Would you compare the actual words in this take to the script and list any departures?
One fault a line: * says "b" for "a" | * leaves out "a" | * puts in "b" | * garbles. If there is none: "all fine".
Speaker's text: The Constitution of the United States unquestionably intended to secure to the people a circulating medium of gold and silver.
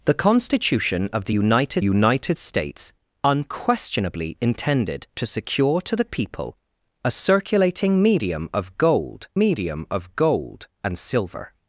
* puts in "United"
* puts in "medium of gold"